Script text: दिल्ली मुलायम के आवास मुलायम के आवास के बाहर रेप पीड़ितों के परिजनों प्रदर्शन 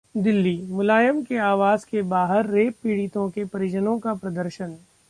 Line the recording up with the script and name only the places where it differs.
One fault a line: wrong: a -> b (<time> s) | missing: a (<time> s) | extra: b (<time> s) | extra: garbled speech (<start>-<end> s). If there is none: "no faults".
missing: मुलायम (1.9 s)
missing: आवास के (2.0 s)
extra: का (4.0 s)